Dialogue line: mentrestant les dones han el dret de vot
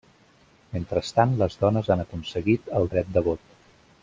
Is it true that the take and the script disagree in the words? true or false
true